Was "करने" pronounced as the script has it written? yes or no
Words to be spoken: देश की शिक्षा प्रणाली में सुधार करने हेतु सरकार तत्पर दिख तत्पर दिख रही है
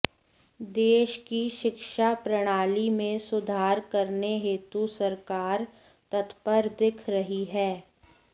yes